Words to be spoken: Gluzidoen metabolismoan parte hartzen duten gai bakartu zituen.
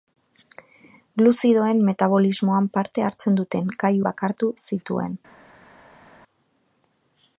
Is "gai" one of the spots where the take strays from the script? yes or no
no